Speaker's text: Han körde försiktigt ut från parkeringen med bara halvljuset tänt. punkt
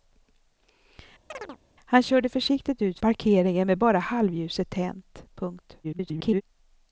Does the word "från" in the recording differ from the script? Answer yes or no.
yes